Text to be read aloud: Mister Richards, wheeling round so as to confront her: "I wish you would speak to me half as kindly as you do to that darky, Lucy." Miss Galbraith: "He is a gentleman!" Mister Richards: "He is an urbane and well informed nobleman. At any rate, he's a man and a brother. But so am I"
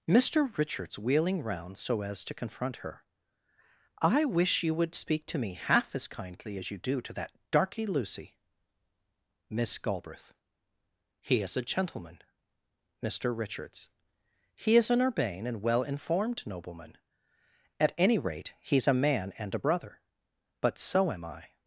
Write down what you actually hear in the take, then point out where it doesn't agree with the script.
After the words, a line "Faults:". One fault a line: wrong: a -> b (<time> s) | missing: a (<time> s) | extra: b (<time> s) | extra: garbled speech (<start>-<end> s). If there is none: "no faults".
Mister Richards, wheeling round so as to confront her: "I wish you would speak to me half as kindly as you do to that darky, Lucy." Miss Galbraith: "He is a gentleman!" Mister Richards: "He is an urbane and well informed nobleman. At any rate, he's a man and a brother. But so am I"
Faults:
no faults